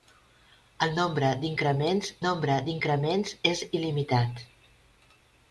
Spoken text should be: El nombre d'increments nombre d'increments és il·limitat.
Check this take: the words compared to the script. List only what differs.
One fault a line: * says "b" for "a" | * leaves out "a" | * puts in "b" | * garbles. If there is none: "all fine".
all fine